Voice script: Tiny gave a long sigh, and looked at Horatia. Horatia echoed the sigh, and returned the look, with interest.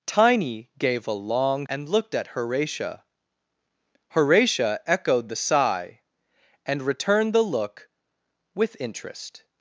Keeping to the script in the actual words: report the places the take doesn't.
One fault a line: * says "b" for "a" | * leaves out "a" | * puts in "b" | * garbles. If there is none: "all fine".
* leaves out "sigh"